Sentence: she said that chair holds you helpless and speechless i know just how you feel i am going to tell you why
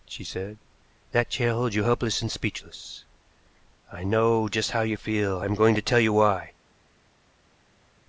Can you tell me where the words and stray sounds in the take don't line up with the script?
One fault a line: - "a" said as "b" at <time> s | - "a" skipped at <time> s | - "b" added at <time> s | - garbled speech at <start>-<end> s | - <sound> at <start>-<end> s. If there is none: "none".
none